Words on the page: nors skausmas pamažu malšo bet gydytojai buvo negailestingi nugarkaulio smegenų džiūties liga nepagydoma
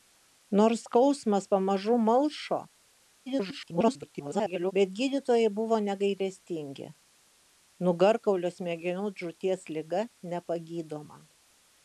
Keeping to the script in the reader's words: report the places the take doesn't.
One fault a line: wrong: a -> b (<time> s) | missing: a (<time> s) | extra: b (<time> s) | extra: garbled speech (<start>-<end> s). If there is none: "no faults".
extra: garbled speech (3.3-4.7 s)